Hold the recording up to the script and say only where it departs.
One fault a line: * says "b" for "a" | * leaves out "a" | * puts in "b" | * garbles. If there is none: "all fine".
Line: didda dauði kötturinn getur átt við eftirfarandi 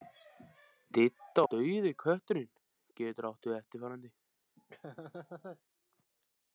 all fine